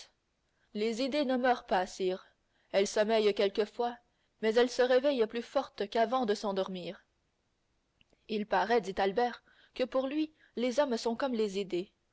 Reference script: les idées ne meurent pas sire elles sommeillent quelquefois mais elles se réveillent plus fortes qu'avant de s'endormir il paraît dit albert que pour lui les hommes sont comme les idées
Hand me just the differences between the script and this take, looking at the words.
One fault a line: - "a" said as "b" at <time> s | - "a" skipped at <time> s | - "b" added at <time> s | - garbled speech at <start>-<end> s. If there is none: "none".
none